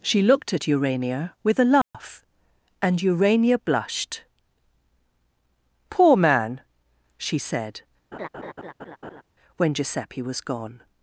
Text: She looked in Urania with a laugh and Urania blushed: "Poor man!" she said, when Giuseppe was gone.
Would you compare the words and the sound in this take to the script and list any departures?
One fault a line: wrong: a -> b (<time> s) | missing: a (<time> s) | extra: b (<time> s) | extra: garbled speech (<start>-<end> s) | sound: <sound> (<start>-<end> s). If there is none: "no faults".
wrong: in -> at (0.5 s)
sound: dropout (1.8-1.9 s)
sound: laugh (8.1-9.2 s)